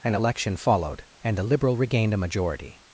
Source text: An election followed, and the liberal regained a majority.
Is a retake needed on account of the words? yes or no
no